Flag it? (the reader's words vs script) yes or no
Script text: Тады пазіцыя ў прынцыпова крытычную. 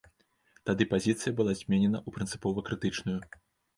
yes